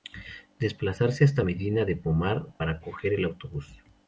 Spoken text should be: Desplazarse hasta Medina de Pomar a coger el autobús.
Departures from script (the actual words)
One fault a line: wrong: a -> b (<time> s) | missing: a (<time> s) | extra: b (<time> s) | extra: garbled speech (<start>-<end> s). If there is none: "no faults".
wrong: a -> para (2.6 s)